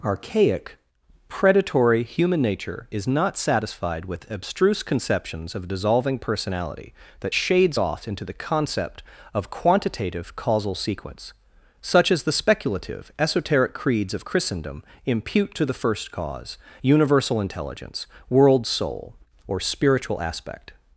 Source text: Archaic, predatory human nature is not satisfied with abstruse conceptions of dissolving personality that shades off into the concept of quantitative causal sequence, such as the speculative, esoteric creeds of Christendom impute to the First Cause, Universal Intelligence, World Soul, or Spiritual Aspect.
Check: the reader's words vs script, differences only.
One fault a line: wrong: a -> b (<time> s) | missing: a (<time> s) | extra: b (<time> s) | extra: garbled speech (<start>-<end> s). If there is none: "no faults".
no faults